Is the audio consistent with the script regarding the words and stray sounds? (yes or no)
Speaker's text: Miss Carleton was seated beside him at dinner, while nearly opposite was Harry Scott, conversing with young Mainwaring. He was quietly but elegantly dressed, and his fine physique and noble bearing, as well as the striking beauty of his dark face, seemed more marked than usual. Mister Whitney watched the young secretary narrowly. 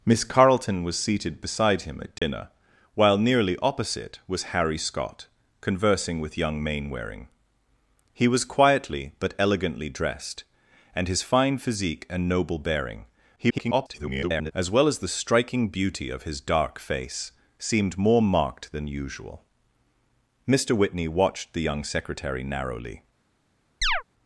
no